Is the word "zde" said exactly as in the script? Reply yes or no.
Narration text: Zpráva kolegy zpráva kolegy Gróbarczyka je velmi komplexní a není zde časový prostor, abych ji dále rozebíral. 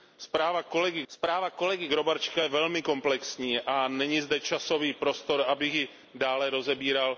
yes